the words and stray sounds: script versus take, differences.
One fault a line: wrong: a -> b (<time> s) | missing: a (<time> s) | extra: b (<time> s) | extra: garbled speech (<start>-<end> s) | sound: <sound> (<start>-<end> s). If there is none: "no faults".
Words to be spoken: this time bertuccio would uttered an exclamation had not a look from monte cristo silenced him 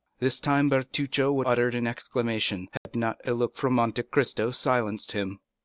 sound: dropout (2.8-2.9 s)